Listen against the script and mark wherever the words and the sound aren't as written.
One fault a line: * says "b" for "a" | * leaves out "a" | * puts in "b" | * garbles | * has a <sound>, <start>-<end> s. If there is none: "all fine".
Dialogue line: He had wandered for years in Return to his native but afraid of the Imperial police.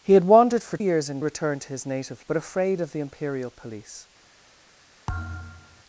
* has a thud, 5.1-5.8 s